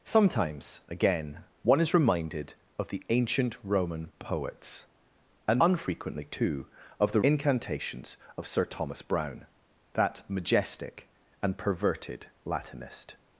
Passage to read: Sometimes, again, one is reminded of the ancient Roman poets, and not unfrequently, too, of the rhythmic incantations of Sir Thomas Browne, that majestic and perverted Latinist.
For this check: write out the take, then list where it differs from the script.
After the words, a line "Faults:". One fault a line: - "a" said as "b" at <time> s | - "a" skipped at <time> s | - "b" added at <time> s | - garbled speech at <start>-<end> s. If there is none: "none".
Sometimes, again, one is reminded of the ancient Roman poets, and unfrequently, too, of the incantations of Sir Thomas Browne, that majestic and perverted Latinist.
Faults:
- "not" skipped at 5.6 s
- "rhythmic" skipped at 7.2 s